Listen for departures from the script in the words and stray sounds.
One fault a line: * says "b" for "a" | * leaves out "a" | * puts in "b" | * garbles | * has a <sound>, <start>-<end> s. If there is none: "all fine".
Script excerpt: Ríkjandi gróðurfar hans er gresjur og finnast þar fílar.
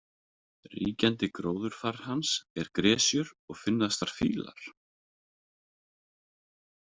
all fine